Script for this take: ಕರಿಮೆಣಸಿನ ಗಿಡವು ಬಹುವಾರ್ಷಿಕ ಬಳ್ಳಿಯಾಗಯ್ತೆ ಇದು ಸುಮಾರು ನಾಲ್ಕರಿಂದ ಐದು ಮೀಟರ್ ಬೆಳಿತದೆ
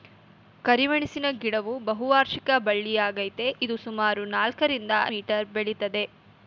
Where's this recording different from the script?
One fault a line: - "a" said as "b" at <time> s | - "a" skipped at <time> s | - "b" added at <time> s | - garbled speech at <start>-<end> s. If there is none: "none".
- "ಐದು" skipped at 4.9 s